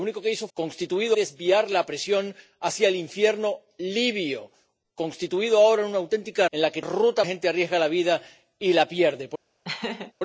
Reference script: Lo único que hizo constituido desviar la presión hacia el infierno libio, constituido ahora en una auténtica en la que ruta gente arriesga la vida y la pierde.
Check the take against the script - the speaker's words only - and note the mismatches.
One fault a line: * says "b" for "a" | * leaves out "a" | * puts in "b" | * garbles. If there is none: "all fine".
all fine